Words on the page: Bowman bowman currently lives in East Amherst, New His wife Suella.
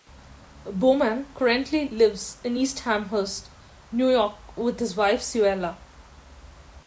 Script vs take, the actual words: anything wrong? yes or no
yes